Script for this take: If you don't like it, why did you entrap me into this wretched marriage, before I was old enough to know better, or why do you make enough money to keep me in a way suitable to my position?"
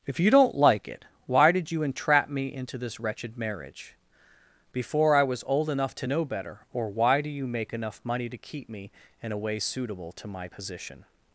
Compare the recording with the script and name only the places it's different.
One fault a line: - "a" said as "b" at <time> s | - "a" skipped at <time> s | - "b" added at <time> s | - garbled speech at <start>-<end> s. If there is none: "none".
none